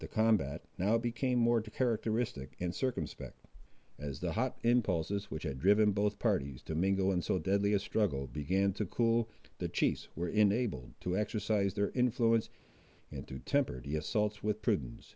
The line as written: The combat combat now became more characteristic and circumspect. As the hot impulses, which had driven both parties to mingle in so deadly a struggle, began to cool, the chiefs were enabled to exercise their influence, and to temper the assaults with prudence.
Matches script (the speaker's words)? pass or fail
fail